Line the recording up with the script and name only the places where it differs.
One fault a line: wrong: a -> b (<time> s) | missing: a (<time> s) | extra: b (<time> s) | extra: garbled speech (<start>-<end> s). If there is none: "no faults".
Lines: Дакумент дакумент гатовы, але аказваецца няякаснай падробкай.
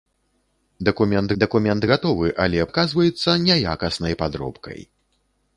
no faults